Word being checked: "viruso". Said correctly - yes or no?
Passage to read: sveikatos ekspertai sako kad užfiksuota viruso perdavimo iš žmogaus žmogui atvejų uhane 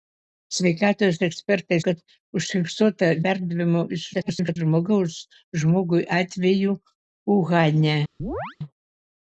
no